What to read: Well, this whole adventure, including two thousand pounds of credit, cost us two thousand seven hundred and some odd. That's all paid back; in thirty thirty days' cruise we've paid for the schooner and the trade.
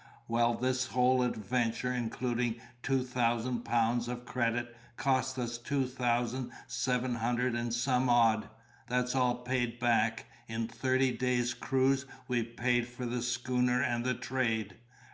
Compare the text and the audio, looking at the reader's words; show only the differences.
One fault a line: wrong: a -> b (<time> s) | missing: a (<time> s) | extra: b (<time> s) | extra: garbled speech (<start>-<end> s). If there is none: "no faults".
missing: thirty (11.1 s)